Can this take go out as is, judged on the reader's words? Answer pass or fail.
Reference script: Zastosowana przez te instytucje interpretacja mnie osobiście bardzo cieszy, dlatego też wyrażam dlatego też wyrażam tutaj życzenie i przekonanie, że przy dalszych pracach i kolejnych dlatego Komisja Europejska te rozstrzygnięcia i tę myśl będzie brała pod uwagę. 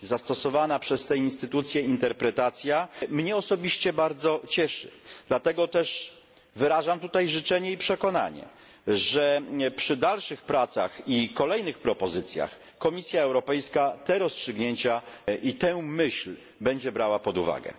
fail